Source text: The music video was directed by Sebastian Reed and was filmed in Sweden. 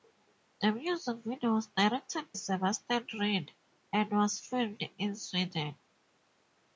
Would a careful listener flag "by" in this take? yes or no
yes